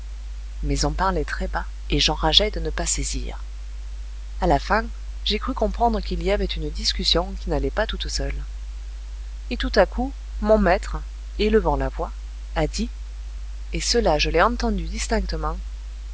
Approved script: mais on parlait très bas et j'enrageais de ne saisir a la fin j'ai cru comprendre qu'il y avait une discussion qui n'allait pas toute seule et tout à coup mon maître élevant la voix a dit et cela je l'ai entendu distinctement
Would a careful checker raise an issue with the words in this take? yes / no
yes